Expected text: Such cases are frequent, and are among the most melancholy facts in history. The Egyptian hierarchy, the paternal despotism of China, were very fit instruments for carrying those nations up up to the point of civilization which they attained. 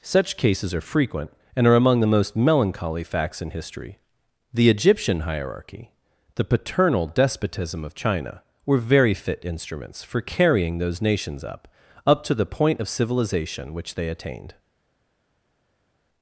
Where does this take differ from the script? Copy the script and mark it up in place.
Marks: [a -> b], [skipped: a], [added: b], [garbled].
Such cases are frequent, and are among the most melancholy facts in history. The Egyptian hierarchy, the paternal despotism of China, were very fit instruments for carrying those nations up up to the point of civilization which they attained.